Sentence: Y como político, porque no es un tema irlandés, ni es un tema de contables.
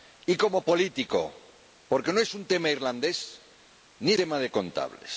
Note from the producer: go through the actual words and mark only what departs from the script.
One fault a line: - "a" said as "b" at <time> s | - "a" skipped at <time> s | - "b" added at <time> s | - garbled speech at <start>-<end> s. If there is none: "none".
- "es un" skipped at 4.1 s